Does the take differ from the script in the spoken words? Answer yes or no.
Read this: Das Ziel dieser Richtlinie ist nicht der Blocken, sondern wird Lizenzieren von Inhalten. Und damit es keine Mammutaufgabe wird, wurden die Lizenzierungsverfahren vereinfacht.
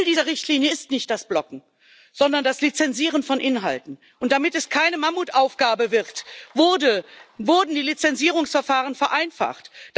yes